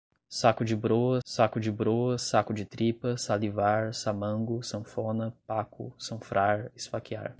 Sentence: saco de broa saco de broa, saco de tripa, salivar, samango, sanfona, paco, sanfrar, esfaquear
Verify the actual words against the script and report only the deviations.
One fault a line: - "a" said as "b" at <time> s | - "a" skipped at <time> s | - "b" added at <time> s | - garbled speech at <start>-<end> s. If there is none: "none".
none